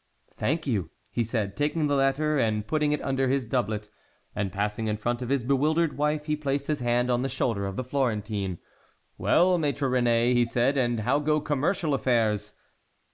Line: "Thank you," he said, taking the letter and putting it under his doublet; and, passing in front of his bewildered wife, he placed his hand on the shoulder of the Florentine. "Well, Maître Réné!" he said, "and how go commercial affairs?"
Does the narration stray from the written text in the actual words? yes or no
no